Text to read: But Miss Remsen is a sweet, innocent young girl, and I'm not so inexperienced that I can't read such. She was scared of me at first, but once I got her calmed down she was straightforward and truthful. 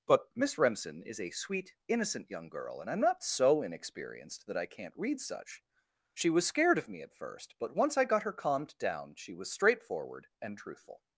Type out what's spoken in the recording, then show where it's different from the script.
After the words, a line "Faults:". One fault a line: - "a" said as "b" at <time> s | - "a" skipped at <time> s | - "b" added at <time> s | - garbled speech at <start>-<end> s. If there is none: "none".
But Miss Remsen is a sweet, innocent young girl, and I'm not so inexperienced that I can't read such. She was scared of me at first, but once I got her calmed down she was straightforward and truthful.
Faults:
none